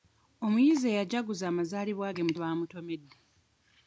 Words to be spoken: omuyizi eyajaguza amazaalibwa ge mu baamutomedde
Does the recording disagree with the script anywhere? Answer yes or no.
no